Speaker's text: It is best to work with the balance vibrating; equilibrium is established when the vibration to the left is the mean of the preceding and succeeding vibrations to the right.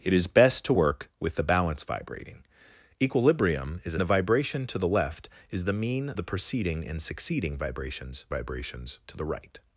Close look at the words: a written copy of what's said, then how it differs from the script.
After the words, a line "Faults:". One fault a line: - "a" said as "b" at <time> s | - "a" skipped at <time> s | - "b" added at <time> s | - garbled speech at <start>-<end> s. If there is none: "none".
It is best to work with the balance vibrating; equilibrium is the vibration to the left is the mean the preceding and succeeding vibrations vibrations to the right.
Faults:
- "established when" skipped at 4.0 s
- "of" skipped at 6.1 s
- "vibrations" added at 8.3 s